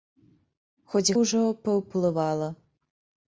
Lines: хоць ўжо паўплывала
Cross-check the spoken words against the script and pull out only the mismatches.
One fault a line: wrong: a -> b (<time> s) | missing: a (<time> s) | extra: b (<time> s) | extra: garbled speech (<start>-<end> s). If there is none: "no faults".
no faults